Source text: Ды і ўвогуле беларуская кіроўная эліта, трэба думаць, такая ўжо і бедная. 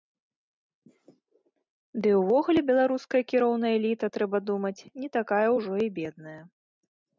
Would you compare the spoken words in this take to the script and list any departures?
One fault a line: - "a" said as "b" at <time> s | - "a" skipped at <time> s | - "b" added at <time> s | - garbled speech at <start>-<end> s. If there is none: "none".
- "не" added at 5.0 s